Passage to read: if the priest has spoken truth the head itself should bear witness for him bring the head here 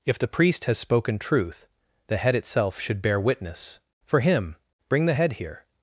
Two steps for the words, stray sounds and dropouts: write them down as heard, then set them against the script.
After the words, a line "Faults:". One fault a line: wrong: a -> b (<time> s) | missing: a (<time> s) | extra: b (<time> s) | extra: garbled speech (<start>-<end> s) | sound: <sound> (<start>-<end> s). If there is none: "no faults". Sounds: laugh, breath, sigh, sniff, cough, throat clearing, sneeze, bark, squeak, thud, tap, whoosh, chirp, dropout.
if the priest has spoken truth the head itself should bear witness for him bring the head here
Faults:
no faults